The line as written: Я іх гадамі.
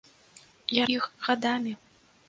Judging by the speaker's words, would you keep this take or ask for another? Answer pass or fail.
pass